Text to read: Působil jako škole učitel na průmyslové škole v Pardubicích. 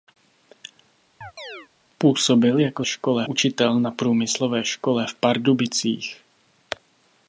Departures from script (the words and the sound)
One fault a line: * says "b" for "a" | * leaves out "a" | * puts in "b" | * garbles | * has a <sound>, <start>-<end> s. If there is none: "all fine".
* has a chirp, 1.2-1.7 s